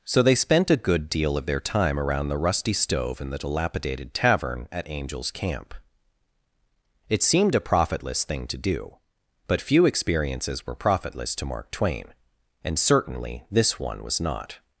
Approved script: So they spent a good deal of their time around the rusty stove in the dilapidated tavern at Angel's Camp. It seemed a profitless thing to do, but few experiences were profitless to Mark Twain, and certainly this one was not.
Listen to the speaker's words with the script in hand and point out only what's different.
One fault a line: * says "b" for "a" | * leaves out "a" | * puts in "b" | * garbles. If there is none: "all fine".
all fine